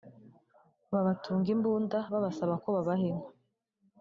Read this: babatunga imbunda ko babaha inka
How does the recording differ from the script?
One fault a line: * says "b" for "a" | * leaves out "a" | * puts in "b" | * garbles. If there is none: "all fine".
* puts in "babasaba"